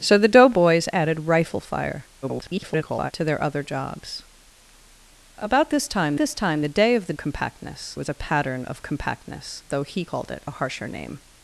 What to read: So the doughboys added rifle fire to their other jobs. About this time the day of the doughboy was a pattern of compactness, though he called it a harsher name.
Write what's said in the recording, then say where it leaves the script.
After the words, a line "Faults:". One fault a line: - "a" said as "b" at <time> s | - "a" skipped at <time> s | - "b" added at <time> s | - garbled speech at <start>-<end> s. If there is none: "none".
So the doughboys added rifle fire [garbled] to their other jobs. About this time this time the day of the compactness was a pattern of compactness, though he called it a harsher name.
Faults:
- garbled speech at 2.2-3.1 s
- "this time" added at 6.2 s
- "doughboy" said as "compactness" at 7.2 s